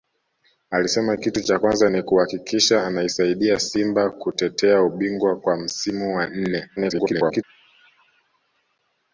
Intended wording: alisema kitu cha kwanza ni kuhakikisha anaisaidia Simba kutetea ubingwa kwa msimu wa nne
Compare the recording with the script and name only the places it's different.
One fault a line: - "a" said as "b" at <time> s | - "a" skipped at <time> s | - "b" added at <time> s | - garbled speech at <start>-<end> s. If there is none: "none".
- garbled speech at 6.8-7.4 s